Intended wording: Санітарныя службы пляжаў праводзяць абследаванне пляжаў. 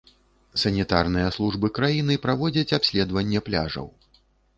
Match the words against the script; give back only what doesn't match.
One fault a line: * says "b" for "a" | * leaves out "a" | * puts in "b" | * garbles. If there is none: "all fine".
* says "краіны" for "пляжаў"